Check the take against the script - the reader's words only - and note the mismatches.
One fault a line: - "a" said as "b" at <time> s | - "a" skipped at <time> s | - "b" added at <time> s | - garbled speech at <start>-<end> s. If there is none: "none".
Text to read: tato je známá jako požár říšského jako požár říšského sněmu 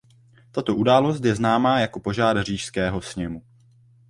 - "událost" added at 0.7 s
- "jako požár říšského" skipped at 3.0 s